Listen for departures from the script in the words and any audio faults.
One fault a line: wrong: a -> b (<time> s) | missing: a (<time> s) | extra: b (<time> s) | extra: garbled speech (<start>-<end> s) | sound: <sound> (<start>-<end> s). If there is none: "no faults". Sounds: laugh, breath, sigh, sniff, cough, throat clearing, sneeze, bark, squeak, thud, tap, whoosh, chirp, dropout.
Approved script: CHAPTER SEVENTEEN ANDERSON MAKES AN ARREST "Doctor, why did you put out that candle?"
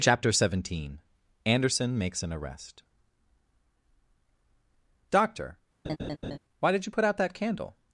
sound: laugh (5.8-6.4 s)